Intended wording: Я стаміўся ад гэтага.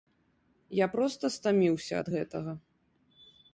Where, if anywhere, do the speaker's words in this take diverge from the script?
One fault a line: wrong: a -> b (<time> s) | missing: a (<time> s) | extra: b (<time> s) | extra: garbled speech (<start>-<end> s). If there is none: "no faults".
extra: проста (0.9 s)